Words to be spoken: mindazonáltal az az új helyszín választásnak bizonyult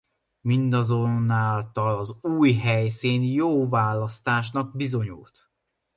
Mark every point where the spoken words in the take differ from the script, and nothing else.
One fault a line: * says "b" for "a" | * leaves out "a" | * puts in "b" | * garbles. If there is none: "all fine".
* leaves out "az"
* puts in "jó"